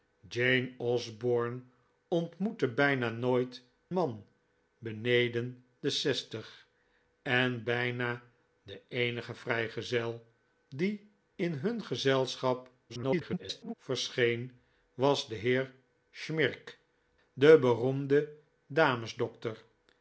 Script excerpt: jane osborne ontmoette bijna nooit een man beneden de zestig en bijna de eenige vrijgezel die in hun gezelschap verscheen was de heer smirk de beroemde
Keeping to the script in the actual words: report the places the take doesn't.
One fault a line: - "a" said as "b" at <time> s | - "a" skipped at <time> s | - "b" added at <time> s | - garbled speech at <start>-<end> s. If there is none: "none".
- "een" skipped at 3.6 s
- garbled speech at 12.9-13.7 s